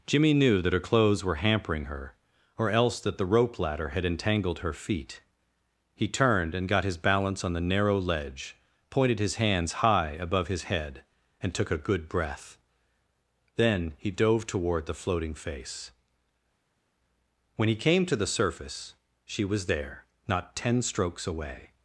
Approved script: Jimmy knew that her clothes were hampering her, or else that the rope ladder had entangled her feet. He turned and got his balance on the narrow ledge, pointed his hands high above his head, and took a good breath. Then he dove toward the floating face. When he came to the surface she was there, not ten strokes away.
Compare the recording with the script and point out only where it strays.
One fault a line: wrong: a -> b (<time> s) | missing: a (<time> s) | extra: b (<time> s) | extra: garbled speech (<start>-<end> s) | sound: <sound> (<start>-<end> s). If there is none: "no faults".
no faults